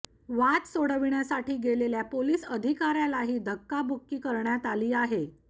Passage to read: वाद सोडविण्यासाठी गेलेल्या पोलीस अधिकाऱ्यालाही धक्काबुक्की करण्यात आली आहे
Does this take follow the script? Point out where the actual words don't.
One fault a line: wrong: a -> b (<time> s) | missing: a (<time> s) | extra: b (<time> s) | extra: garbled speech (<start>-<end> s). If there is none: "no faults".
no faults